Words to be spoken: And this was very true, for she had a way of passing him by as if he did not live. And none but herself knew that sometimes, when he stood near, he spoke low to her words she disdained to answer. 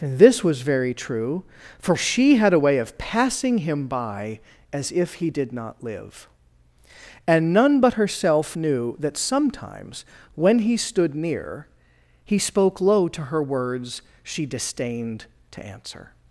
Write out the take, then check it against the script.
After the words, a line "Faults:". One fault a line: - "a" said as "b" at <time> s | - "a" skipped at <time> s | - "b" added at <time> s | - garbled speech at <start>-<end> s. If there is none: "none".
And this was very true, for she had a way of passing him by as if he did not live. And none but herself knew that sometimes, when he stood near, he spoke low to her words she disdained to answer.
Faults:
none